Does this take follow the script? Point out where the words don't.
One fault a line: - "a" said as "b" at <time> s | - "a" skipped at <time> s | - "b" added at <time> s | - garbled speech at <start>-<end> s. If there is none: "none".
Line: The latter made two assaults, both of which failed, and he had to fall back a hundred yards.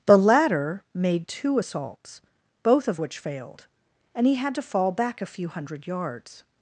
- "few" added at 5.3 s